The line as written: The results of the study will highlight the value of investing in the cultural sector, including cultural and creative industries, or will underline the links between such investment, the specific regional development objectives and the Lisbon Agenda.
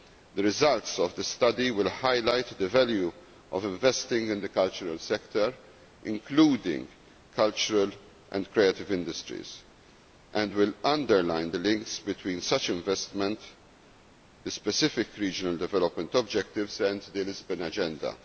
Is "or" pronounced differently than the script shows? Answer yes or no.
yes